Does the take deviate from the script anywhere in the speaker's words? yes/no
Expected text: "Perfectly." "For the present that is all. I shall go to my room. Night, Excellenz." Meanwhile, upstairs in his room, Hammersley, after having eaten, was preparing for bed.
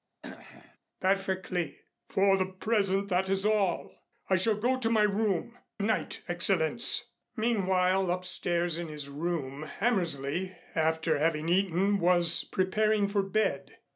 no